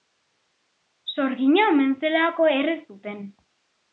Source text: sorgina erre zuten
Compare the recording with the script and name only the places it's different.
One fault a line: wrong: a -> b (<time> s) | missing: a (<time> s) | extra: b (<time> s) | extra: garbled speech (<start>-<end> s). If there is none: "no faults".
extra: omen zelako (1.7 s)